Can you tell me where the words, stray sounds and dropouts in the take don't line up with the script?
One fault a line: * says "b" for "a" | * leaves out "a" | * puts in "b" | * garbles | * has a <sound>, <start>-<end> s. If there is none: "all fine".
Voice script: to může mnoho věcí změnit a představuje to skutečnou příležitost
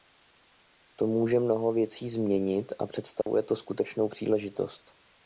* has a dropout, 3.2-3.3 s